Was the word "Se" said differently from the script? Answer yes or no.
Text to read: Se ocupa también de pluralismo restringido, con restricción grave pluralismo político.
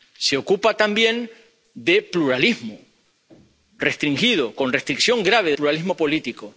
no